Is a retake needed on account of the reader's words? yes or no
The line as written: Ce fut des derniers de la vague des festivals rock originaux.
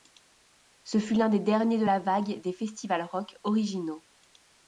yes